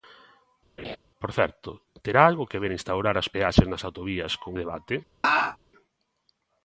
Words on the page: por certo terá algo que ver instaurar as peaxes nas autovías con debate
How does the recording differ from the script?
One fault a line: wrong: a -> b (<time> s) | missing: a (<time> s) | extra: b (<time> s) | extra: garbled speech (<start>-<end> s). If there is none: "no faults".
no faults